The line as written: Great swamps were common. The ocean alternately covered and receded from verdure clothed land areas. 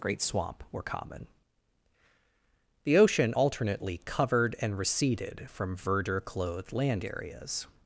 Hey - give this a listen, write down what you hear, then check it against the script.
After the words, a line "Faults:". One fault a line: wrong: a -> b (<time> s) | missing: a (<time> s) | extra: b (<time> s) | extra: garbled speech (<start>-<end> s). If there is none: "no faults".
Great swamp were common. The ocean alternately covered and receded from verdure clothed land areas.
Faults:
wrong: swamps -> swamp (0.2 s)